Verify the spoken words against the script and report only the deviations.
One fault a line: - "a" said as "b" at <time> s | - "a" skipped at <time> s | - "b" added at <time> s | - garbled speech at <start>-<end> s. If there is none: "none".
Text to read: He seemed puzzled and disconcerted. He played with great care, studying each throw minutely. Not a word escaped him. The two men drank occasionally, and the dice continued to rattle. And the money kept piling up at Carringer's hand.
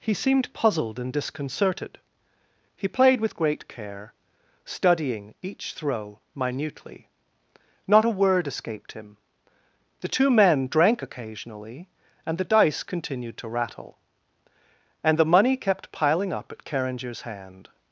none